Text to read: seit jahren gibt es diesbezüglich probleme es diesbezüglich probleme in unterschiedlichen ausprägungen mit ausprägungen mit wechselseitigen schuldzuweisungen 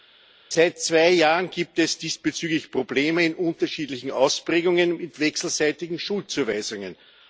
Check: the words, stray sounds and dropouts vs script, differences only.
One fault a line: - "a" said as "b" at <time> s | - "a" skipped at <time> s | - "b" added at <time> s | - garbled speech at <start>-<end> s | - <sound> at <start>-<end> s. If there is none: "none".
- "zwei" added at 0.8 s
- "es diesbezüglich probleme" skipped at 3.2 s
- "ausprägungen mit" skipped at 5.2 s